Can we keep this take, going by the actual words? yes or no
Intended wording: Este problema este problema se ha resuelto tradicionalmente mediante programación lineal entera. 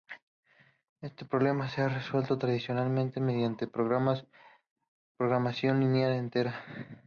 no